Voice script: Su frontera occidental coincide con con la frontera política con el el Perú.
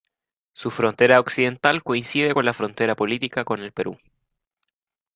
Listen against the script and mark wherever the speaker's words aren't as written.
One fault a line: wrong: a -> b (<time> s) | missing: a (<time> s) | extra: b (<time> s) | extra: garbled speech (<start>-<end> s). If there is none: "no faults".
missing: con (2.4 s)
missing: el (3.7 s)